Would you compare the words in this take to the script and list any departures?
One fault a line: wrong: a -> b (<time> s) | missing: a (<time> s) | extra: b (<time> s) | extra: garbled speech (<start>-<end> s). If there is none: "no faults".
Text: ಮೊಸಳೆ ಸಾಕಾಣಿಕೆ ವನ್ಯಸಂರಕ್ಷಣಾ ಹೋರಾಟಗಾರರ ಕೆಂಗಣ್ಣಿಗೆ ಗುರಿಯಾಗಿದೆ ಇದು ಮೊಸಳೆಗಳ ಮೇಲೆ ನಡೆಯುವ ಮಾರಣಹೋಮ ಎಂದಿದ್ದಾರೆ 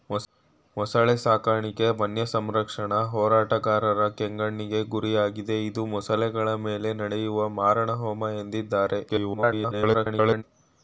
extra: garbled speech (9.1-10.4 s)